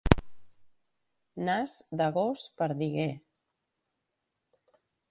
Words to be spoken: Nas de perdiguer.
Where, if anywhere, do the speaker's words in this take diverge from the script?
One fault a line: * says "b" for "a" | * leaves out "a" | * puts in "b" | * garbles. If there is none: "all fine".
* puts in "gos"